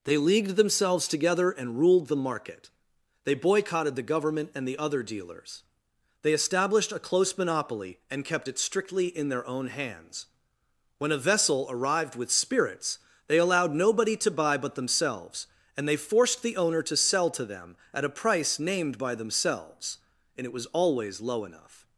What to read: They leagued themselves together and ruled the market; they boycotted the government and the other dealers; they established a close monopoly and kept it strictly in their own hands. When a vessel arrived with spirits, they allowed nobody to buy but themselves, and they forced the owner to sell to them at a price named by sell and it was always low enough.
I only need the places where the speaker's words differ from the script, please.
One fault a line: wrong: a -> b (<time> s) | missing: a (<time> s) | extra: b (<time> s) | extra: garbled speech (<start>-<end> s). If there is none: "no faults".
wrong: sell -> themselves (19.1 s)